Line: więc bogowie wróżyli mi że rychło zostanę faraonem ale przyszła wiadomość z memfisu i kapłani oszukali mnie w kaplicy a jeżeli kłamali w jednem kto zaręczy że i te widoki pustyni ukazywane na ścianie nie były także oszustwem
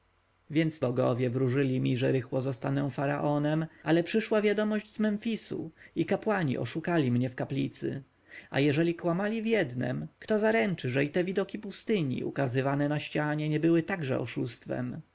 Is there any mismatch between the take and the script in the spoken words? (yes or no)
no